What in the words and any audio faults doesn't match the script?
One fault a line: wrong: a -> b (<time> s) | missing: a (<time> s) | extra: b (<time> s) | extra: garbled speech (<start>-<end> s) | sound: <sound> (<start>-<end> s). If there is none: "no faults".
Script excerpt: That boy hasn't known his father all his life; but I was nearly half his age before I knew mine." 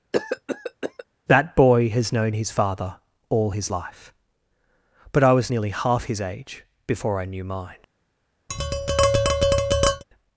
sound: cough (0.1-1.0 s)
wrong: hasn't -> has (1.9 s)
sound: tap (8.5-10.0 s)